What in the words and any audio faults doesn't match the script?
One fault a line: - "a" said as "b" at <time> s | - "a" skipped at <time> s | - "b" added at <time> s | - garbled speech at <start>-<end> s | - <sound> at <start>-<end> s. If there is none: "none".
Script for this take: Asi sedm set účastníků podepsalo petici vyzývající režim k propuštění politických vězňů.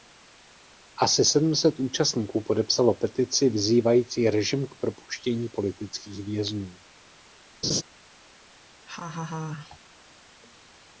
- laugh at 7.6-7.8 s
- laugh at 8.8-9.8 s